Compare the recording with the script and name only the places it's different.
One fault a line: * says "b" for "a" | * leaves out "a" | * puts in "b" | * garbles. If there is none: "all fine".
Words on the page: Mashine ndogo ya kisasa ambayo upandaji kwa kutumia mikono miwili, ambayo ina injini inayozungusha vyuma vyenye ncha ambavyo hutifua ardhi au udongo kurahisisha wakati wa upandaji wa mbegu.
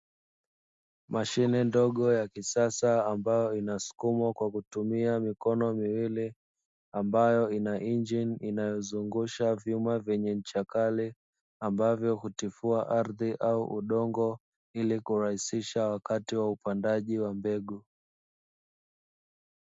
* says "inasukumwa" for "upandaji"
* puts in "kali"
* puts in "ili"